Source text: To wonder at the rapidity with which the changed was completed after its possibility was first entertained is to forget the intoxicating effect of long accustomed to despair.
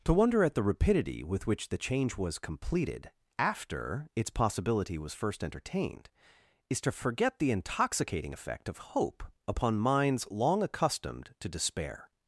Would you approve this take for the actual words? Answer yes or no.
no